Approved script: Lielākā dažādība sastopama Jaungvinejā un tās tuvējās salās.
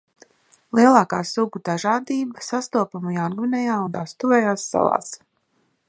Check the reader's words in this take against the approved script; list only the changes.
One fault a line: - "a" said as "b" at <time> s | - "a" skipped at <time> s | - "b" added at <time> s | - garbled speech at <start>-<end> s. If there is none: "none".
- "sugu" added at 1.3 s